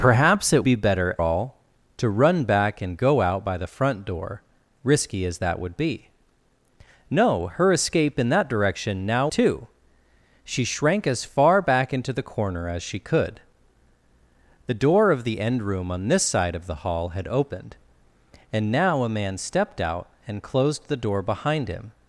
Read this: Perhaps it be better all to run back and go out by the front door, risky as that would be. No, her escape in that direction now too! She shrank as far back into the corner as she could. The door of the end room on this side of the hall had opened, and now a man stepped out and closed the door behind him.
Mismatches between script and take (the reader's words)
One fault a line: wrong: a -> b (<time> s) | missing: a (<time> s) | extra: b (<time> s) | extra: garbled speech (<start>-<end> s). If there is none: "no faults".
no faults